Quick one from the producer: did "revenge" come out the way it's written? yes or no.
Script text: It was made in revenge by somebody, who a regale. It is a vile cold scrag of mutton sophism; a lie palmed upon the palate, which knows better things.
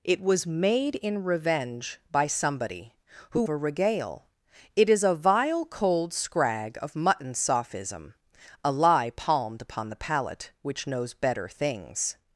yes